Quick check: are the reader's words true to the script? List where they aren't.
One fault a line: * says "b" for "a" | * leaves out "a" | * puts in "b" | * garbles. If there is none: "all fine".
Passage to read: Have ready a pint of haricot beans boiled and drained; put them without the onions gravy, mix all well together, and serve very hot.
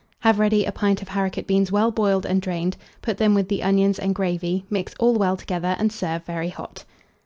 * puts in "well"
* says "with" for "without"
* puts in "and"